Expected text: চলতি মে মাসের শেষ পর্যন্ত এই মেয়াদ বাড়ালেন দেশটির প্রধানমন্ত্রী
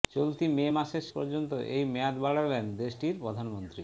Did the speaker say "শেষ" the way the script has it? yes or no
no